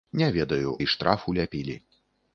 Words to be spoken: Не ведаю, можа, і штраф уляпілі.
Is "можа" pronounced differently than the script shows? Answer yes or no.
yes